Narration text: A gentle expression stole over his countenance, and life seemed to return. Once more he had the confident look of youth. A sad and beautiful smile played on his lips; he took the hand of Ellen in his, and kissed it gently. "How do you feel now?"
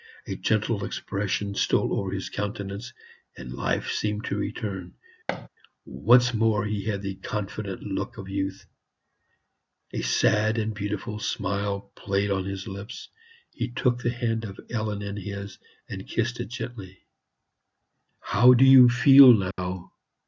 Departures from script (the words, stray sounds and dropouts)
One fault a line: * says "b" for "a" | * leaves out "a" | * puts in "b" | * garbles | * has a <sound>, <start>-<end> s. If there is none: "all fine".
* has a thud, 5.3-5.5 s
* has a dropout, 19.5-19.6 s